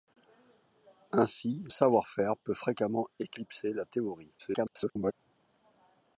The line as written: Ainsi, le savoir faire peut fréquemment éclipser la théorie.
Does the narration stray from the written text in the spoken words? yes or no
yes